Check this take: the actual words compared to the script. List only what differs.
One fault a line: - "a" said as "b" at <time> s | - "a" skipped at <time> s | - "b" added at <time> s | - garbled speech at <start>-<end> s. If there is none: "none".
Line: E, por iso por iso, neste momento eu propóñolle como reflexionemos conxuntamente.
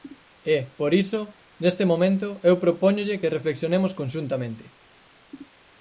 - "por iso" skipped at 1.2 s
- "como" said as "que" at 3.2 s